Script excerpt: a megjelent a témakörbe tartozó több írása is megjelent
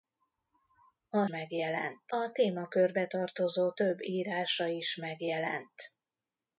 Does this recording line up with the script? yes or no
yes